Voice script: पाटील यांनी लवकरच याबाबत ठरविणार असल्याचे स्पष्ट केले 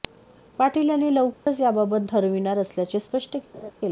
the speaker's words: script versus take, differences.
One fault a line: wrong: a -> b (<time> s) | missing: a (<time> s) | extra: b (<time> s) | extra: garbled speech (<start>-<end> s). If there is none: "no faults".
no faults